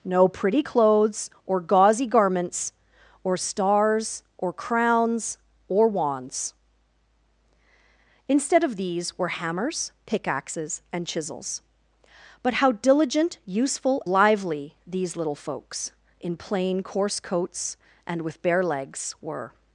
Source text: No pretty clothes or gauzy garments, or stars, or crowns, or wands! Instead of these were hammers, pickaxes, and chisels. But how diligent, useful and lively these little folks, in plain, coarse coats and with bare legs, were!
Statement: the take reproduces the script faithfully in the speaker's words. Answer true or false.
false